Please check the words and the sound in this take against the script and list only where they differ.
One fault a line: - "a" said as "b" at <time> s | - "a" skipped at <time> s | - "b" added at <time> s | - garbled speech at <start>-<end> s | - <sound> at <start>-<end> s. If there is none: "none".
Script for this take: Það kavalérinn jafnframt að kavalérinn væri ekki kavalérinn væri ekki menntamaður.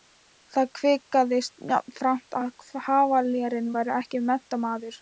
- "kavalérinn" said as "kvisaðist" at 0.8 s
- "kavalérinn væri ekki" skipped at 4.2 s